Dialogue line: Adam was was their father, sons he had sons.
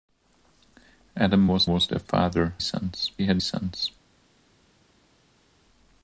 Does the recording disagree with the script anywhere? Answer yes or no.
no